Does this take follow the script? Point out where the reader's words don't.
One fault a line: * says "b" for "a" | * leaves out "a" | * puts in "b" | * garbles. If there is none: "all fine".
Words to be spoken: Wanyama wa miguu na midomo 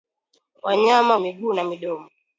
all fine